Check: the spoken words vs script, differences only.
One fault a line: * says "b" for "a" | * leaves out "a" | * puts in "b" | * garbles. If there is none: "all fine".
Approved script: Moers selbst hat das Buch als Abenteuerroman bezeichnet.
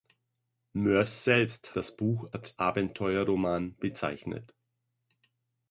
* leaves out "hat"
* says "hat" for "als"